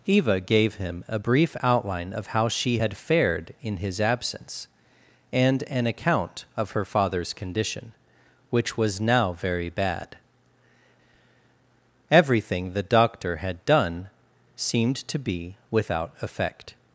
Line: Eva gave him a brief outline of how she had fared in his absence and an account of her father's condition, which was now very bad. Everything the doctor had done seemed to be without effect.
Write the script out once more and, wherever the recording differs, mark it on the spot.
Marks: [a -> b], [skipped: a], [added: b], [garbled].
Eva gave him a brief outline of how she had fared in his absence and an account of her father's condition, which was now very bad. Everything the doctor had done seemed to be without effect.